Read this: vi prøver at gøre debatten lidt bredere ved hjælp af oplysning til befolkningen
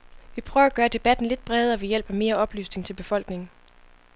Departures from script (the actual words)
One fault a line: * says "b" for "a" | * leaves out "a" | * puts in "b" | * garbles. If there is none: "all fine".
* puts in "mere"